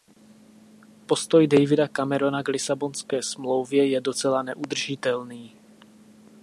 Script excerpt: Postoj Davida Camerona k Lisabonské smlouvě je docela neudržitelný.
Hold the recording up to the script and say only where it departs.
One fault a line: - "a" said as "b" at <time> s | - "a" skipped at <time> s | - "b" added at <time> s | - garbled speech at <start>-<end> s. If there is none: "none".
none